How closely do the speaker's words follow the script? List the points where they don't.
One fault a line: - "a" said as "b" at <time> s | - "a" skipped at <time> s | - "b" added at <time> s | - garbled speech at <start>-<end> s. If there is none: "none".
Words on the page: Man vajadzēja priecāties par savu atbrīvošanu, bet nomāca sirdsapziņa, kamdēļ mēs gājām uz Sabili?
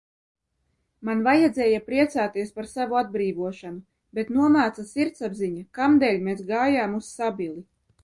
none